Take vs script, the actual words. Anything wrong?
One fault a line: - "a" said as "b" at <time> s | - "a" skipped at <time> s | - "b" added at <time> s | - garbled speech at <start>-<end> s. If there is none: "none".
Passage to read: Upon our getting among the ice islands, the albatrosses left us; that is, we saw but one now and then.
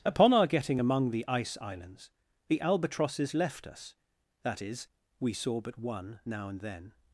none